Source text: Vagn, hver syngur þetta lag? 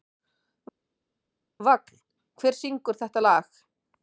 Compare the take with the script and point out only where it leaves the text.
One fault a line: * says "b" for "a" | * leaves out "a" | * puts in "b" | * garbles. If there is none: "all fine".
all fine